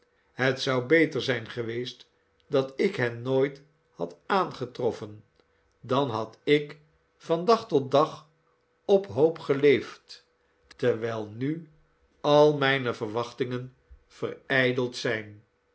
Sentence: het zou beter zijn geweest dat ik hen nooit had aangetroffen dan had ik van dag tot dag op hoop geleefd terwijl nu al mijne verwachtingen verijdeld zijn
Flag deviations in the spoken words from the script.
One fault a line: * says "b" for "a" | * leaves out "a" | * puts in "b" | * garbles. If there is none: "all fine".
all fine